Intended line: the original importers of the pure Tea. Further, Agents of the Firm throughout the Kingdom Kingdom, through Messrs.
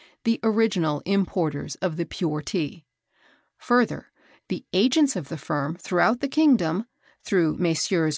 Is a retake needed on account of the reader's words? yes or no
yes